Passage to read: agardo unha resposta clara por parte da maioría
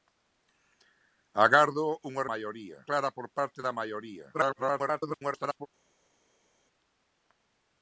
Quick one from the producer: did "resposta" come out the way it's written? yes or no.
no